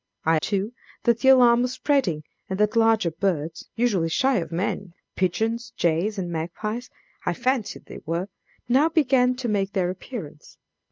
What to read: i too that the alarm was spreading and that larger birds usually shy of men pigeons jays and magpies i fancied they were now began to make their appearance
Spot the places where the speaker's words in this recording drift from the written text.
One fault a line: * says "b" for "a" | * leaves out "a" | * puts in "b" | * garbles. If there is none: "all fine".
all fine